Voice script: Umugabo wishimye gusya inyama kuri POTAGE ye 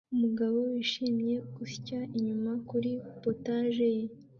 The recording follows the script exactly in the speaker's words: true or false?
true